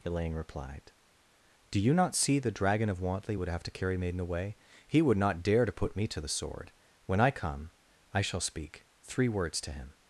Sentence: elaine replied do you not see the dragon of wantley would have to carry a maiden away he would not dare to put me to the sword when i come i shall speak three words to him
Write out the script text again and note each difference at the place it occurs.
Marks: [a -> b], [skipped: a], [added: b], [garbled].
elaine replied do you not see the dragon of wantley would have to carry [skipped: a] maiden away he would not dare to put me to the sword when i come i shall speak three words to him